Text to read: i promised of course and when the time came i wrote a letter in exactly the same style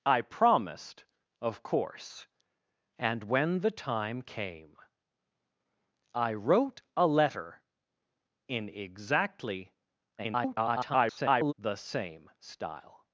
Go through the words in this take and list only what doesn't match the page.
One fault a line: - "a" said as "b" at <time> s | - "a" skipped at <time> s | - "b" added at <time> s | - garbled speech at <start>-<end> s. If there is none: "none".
- garbled speech at 10.2-11.5 s